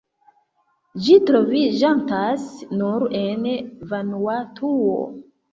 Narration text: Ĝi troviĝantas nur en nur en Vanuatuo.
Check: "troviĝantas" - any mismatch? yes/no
no